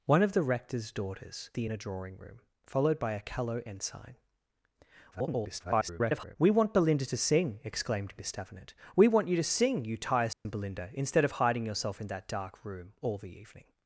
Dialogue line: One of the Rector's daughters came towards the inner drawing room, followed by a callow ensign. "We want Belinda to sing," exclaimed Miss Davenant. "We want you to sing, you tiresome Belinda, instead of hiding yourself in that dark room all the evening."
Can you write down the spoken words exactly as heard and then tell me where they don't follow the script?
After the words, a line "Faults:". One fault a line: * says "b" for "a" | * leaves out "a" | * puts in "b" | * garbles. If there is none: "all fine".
One of the Rector's daughters the inner drawing room, followed by a callow ensign. [garbled] "We want Belinda to sing," exclaimed Miss Davenant. "We want you to sing, you tiresome Belinda, instead of hiding yourself in that dark room all the evening."
Faults:
* leaves out "came towards"
* garbles